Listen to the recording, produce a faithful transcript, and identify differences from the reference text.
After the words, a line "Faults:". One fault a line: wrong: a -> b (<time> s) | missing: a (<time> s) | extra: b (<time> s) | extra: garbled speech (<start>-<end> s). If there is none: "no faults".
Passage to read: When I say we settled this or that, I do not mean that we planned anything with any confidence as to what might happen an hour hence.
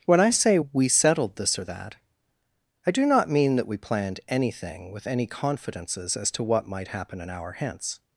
When I say we settled this or that, I do not mean that we planned anything with any confidences as to what might happen an hour hence.
Faults:
wrong: confidence -> confidences (5.3 s)